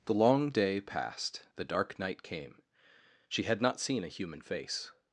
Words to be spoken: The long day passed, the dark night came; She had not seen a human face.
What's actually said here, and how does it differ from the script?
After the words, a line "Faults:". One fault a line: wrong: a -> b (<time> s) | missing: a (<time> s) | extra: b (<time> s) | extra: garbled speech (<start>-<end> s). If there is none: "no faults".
The long day passed, the dark night came; She had not seen a human face.
Faults:
no faults